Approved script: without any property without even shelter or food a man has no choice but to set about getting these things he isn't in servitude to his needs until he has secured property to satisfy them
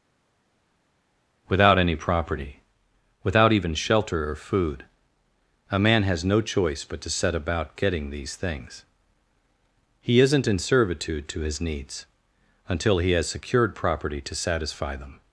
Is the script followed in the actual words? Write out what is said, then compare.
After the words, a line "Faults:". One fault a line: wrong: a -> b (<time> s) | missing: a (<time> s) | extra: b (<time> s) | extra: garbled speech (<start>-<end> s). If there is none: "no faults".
without any property without even shelter or food a man has no choice but to set about getting these things he isn't in servitude to his needs until he has secured property to satisfy them
Faults:
no faults